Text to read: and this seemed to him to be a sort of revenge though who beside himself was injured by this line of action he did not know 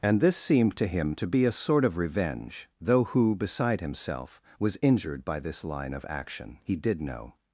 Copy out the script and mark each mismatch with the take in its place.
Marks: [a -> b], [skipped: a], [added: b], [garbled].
and this seemed to him to be a sort of revenge though who beside himself was injured by this line of action he did [skipped: not] know